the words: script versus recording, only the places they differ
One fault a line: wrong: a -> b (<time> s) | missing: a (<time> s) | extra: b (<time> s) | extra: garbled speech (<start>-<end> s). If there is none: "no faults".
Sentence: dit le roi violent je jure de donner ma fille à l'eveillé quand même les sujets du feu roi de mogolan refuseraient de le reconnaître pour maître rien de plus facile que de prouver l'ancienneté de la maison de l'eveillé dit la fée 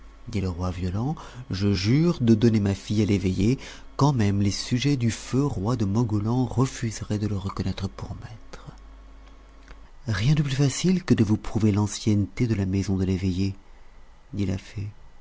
extra: vous (11.3 s)